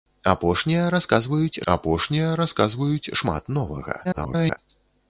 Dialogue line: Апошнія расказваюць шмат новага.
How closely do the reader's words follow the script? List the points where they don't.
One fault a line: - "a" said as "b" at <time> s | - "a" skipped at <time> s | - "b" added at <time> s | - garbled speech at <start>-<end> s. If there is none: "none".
- "апошнія расказваюць" added at 1.7 s
- garbled speech at 4.0-4.6 s